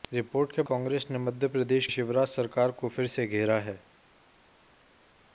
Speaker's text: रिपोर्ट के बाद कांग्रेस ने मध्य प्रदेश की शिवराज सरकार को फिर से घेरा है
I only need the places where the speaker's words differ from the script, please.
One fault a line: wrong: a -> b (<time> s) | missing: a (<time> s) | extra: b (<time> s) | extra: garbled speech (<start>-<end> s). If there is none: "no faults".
missing: बाद (0.6 s)
missing: की (1.9 s)